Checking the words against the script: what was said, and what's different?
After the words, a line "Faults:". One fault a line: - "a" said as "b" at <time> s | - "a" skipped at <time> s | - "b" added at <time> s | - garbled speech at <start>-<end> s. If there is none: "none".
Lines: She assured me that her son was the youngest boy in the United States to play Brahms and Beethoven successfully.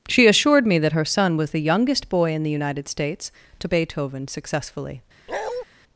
She assured me that her son was the youngest boy in the United States to Beethoven successfully.
Faults:
- "play Brahms and" skipped at 3.7 s